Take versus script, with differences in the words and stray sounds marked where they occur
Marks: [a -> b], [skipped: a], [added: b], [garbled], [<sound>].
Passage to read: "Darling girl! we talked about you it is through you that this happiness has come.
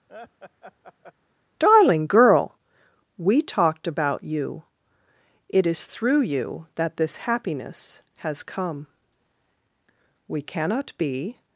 [laugh] "Darling girl! we talked about you it is through you that this happiness has come. [added: We cannot be]